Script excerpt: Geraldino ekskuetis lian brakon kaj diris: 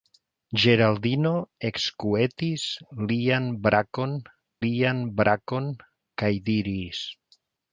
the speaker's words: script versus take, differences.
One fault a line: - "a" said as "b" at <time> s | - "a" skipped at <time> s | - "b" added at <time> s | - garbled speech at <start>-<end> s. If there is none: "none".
- "lian brakon" added at 4.7 s